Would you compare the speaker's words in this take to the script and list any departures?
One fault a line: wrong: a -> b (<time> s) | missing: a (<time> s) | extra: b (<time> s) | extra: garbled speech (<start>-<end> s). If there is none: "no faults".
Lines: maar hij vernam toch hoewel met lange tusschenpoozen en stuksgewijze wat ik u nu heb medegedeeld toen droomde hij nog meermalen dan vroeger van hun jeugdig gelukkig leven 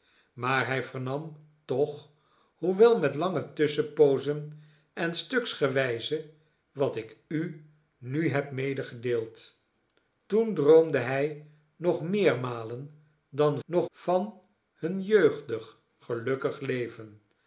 wrong: vroeger -> nog (13.6 s)